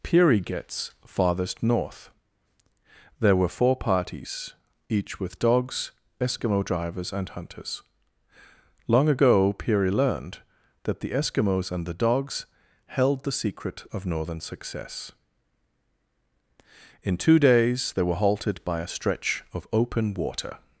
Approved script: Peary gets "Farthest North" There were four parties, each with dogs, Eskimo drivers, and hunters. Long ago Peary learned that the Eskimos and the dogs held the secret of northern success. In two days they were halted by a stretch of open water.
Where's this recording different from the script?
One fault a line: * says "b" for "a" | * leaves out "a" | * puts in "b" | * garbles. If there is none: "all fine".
all fine